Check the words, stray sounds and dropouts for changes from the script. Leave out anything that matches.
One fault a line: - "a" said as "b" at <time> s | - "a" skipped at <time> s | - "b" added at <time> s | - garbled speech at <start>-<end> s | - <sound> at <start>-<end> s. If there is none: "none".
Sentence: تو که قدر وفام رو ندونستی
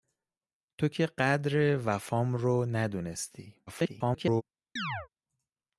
- garbled speech at 3.7-4.4 s
- chirp at 4.8-5.1 s